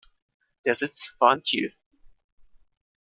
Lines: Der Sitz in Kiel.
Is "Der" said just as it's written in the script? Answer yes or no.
yes